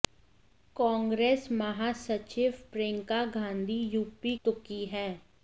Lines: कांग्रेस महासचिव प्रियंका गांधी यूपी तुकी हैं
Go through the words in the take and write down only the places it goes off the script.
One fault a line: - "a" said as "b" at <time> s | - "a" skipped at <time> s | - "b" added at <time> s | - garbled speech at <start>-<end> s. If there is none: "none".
none